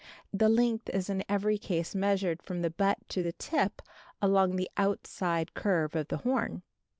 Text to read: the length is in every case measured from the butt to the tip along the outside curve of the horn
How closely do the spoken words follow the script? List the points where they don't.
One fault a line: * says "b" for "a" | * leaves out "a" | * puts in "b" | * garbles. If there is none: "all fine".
all fine